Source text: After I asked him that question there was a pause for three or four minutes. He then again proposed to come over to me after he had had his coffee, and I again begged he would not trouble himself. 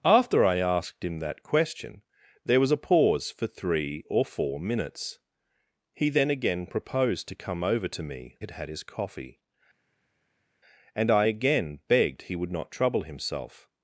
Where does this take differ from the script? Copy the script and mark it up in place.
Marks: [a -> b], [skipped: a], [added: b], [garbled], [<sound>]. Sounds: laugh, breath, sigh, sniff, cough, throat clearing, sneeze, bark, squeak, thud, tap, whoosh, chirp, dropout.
After I asked him that question there was a pause for three or four minutes. He then again proposed to come over to me [skipped: after he] had had his coffee, and I again begged he would not trouble himself.